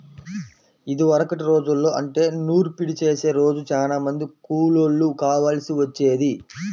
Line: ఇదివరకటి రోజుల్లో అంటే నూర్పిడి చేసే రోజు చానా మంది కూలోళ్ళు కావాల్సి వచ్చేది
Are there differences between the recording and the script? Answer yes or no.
no